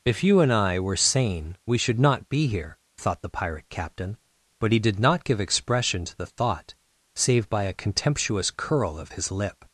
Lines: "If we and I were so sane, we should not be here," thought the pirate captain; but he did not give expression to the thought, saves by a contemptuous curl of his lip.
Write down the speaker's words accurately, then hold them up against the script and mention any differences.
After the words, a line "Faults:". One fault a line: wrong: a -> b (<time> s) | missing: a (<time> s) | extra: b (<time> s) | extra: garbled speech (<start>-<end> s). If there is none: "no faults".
"If you and I were sane, we should not be here," thought the pirate captain; but he did not give expression to the thought, save by a contemptuous curl of his lip.
Faults:
wrong: we -> you (0.2 s)
missing: so (1.0 s)
wrong: saves -> save (7.2 s)